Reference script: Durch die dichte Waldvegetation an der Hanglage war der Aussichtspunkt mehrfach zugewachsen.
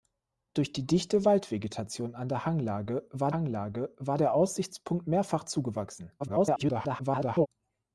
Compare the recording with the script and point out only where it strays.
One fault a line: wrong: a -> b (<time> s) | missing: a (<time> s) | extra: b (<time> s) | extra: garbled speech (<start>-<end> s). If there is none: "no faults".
extra: Hanglage war (3.3 s)
extra: garbled speech (6.2-7.5 s)